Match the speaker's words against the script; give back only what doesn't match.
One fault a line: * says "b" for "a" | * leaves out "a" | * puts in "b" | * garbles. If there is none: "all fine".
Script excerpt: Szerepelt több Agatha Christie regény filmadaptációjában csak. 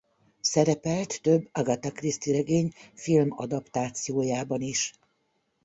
* says "is" for "csak"